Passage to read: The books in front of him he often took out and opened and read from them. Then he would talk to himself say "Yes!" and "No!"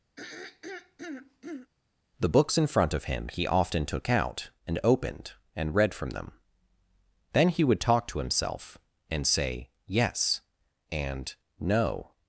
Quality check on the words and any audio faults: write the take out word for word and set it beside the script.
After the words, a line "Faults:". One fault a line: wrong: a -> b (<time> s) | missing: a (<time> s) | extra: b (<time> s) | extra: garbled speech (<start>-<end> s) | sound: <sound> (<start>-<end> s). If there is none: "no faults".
The books in front of him he often took out and opened and read from them. Then he would talk to himself and say "Yes!" and "No!"
Faults:
sound: throat clearing (0.2-1.7 s)
extra: and (9.1 s)